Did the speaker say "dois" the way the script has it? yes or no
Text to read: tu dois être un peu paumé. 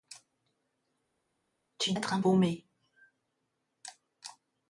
no